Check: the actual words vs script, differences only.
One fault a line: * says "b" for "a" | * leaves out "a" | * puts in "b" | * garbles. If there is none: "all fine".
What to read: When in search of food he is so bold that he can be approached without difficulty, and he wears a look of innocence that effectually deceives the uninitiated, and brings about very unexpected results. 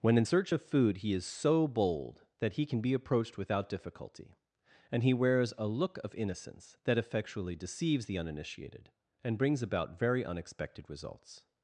all fine